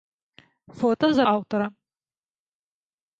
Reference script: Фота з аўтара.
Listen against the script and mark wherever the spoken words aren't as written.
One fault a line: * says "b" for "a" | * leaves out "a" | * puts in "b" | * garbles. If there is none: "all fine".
all fine